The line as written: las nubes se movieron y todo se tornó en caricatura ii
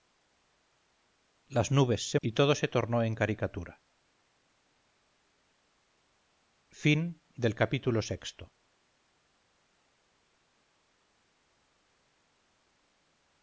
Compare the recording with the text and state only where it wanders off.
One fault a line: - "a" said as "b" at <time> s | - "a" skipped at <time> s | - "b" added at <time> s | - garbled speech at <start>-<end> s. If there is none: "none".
- "movieron" skipped at 2.2 s